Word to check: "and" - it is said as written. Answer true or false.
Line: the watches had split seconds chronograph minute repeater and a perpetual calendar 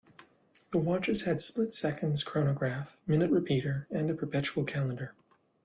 true